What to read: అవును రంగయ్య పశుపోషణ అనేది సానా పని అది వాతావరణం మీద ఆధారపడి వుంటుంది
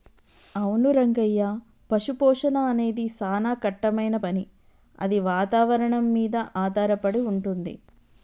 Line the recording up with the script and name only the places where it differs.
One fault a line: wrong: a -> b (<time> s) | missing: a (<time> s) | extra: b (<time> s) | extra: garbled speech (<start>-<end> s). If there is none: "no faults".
extra: కట్టమైన (3.6 s)